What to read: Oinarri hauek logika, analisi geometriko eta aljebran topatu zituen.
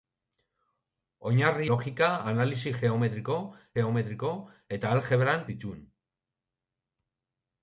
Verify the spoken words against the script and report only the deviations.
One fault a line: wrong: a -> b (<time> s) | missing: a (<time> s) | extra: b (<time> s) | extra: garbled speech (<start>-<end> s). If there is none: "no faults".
missing: hauek (1.7 s)
extra: geometriko (3.8 s)
missing: topatu (5.5 s)